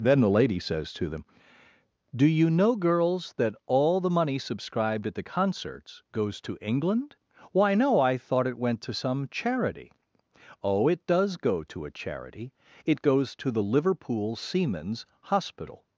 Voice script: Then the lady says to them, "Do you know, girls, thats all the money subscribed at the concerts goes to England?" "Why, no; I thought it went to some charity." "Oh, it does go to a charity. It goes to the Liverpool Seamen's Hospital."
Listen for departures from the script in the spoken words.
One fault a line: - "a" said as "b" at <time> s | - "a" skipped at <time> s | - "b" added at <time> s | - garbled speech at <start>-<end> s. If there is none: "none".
- "thats" said as "that" at 3.4 s